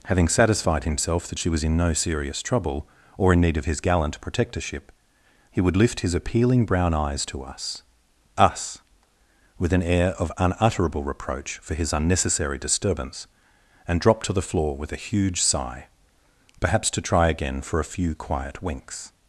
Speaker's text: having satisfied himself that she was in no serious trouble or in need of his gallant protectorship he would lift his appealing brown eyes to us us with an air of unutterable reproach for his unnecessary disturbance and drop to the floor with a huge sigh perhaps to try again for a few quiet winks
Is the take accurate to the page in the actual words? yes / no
yes